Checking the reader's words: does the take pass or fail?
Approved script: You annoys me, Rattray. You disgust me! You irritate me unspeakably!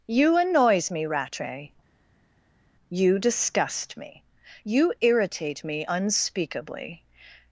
pass